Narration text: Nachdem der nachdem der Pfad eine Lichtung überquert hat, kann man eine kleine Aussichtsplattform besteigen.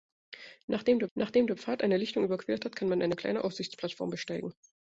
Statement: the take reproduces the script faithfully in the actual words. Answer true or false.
true